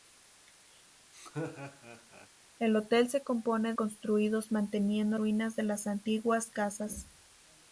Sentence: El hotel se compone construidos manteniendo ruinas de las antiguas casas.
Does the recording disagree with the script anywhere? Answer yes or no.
no